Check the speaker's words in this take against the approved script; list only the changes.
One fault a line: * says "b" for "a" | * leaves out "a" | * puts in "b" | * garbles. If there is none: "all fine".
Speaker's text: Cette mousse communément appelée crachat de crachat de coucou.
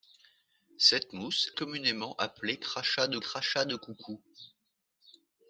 all fine